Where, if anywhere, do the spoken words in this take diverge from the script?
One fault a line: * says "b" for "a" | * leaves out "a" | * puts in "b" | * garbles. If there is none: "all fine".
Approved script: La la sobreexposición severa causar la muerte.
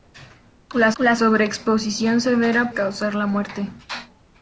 all fine